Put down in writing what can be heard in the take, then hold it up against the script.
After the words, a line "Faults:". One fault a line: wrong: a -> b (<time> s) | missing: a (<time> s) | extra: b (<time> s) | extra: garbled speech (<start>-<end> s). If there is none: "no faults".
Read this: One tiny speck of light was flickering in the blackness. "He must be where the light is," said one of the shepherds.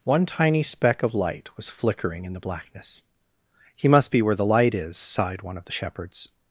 One tiny speck of light was flickering in the blackness. "He must be where the light is," sighed one of the shepherds.
Faults:
wrong: said -> sighed (5.0 s)